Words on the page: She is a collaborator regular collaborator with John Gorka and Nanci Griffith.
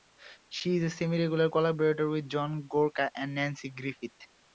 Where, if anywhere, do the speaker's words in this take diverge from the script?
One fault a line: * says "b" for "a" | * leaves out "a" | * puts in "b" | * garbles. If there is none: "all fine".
* says "semi" for "collaborator"